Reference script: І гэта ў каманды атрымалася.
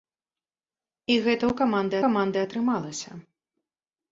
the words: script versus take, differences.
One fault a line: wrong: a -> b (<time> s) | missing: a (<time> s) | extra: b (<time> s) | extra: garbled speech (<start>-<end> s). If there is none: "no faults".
extra: каманды (2.0 s)